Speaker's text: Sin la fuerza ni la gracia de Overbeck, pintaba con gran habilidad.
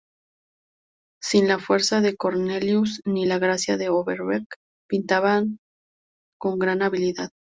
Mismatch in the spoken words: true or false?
true